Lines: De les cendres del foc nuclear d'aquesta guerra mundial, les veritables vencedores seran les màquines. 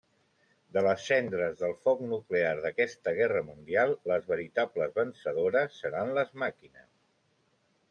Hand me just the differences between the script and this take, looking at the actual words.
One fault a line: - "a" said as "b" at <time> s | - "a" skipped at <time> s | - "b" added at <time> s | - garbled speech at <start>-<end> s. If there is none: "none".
none